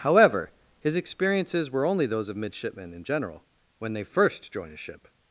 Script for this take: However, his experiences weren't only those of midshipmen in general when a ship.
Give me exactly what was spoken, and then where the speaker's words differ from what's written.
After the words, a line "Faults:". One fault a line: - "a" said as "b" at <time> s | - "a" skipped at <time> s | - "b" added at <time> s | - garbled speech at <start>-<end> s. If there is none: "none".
However, his experiences were only those of midshipmen in general when they first join a ship.
Faults:
- "weren't" said as "were" at 1.7 s
- "they first join" added at 3.9 s